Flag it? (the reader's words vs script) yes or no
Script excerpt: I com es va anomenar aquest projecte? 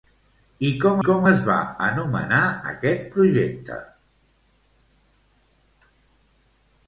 yes